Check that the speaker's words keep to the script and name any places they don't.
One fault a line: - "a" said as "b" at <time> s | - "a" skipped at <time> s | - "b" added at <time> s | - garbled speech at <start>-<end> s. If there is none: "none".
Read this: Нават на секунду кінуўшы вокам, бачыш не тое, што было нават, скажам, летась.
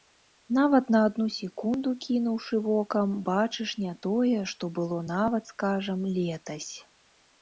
- "адну" added at 1.1 s